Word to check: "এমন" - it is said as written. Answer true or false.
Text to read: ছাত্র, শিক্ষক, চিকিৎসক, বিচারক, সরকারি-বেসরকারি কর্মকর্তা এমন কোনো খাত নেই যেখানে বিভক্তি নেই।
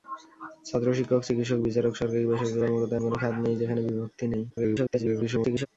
false